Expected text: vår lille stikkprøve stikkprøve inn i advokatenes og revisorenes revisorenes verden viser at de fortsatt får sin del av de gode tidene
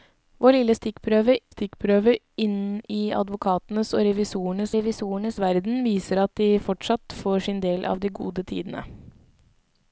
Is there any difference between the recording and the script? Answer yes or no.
no